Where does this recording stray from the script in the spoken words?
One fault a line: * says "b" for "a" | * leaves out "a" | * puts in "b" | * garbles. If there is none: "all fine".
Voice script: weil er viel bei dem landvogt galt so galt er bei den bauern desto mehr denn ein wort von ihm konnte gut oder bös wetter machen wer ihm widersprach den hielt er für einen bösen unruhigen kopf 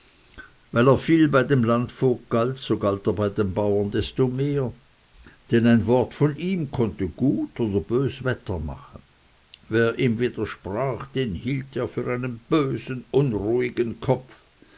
all fine